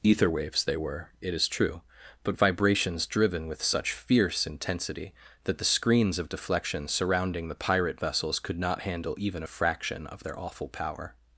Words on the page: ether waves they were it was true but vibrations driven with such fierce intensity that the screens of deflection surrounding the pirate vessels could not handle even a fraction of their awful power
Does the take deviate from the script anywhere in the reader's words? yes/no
yes